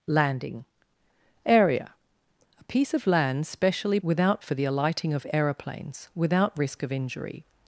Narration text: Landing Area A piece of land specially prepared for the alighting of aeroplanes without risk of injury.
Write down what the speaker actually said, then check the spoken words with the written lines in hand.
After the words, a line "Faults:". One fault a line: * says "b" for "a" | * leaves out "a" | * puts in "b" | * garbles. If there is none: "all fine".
Landing Area A piece of land specially without for the alighting of aeroplanes without risk of injury.
Faults:
* says "without" for "prepared"